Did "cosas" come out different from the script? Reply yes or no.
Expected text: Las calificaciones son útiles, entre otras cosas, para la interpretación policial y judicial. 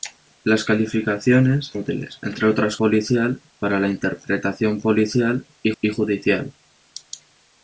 yes